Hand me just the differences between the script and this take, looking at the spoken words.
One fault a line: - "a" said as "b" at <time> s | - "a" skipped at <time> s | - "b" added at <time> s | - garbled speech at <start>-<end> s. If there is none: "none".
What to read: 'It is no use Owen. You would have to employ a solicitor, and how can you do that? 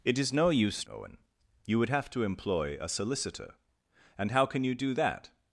none